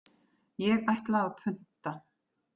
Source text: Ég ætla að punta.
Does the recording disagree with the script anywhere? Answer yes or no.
no